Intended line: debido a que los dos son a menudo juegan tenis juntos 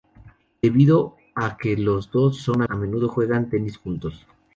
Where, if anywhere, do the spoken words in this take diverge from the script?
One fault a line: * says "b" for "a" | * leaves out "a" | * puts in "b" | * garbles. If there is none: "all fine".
all fine